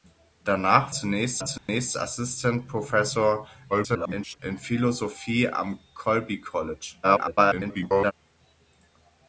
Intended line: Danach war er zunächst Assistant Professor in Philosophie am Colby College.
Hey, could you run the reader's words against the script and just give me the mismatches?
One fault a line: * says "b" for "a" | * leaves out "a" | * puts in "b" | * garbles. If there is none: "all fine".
* says "zunächst" for "war"
* garbles
* garbles